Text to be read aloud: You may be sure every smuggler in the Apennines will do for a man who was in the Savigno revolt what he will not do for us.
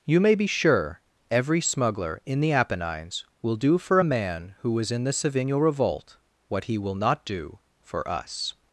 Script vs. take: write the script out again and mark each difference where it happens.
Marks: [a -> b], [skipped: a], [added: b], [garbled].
You may be sure every smuggler in the Apennines will do for a man who was in the Savigno revolt what he will not do for us.